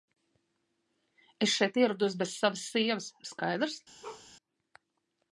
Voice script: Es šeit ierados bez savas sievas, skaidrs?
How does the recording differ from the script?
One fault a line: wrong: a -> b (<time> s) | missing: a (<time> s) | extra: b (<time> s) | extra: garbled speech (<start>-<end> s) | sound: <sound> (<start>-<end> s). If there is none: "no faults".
sound: bark (4.0-4.3 s)